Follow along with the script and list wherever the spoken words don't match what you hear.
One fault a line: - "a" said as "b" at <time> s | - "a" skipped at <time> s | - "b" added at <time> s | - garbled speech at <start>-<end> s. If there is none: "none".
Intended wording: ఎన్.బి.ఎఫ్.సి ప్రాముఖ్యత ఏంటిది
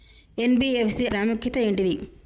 none